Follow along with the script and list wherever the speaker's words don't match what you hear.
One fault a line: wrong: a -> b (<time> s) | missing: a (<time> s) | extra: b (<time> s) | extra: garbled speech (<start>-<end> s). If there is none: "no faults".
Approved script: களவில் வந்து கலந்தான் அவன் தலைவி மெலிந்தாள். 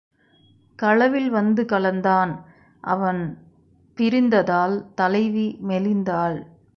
extra: பிரிந்ததால் (4.0 s)